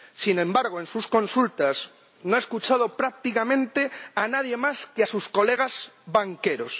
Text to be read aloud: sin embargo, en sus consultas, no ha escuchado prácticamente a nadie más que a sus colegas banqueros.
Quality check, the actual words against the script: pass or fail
pass